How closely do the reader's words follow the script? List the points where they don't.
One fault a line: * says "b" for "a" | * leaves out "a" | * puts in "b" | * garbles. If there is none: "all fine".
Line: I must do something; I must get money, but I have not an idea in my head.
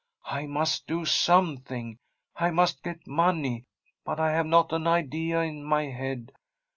all fine